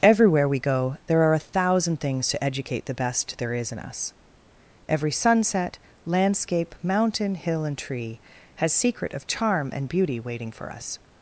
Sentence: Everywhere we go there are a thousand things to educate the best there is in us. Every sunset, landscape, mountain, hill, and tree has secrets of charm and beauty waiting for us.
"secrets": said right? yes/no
no